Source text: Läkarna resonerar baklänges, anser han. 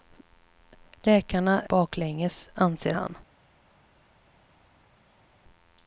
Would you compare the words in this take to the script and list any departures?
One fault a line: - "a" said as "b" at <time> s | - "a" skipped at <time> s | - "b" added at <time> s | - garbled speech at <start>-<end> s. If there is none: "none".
- "resonerar" skipped at 1.6 s